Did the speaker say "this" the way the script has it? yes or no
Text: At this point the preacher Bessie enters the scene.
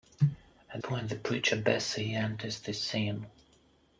no